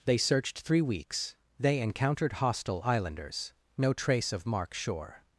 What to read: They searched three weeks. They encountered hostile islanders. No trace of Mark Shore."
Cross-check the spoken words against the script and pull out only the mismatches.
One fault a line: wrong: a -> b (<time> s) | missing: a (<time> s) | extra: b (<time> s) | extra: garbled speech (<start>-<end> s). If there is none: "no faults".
no faults